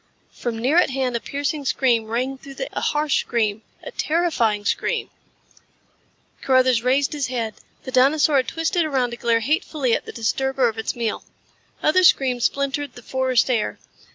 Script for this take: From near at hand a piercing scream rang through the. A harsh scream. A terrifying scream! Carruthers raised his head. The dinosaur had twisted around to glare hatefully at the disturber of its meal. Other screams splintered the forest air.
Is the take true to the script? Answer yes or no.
yes